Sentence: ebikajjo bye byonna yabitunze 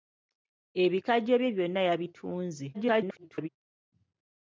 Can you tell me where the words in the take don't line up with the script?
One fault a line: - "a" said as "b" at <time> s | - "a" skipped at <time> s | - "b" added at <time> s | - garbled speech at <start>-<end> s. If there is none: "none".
- garbled speech at 2.7-3.5 s